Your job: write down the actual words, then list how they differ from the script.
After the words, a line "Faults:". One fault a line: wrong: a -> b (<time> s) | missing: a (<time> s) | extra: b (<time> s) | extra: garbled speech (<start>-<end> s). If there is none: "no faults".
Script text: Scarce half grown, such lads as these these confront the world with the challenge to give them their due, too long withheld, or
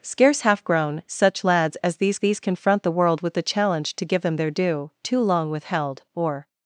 Scarce half grown, such lads as these these confront the world with the challenge to give them their due, too long withheld, or
Faults:
no faults